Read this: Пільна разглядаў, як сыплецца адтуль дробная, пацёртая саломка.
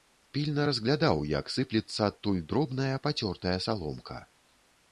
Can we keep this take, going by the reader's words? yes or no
yes